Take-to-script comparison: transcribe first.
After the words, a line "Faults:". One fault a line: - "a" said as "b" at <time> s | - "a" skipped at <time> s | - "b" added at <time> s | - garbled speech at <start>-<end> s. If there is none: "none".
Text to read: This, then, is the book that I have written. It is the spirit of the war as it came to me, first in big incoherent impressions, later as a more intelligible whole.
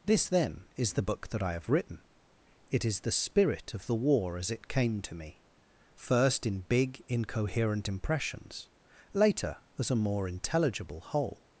This, then, is the book that I have written. It is the spirit of the war as it came to me, first in big incoherent impressions, later as a more intelligible whole.
Faults:
none